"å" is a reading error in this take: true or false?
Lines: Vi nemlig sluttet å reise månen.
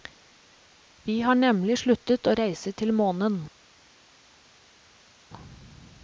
false